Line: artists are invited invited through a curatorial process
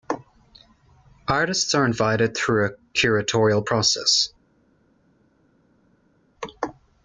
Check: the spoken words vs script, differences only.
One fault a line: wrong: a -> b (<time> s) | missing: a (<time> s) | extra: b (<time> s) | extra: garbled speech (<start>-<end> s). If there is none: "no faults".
missing: invited (2.4 s)